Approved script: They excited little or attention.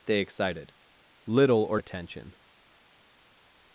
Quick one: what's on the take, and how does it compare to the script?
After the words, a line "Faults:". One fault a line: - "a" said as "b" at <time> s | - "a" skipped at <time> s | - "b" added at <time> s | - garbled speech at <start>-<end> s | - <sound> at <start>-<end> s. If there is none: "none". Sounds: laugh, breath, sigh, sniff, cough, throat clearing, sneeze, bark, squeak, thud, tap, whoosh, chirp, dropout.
They excited little or attention.
Faults:
none